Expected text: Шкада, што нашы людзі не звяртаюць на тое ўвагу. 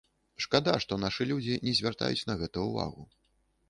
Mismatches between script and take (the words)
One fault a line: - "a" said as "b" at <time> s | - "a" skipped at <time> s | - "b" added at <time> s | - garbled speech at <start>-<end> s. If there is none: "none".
- "тое" said as "гэта" at 2.4 s